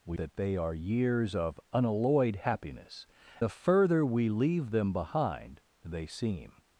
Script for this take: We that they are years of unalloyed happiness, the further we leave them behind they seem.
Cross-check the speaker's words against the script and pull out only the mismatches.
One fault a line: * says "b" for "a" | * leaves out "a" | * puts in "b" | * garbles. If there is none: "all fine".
all fine